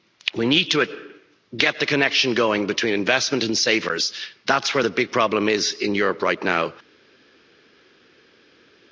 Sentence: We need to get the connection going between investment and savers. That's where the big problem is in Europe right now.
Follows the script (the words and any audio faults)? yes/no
yes